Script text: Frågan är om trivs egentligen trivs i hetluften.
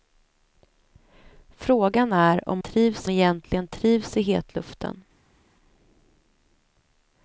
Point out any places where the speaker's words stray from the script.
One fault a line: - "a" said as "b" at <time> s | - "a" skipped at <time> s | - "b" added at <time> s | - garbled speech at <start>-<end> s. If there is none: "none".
none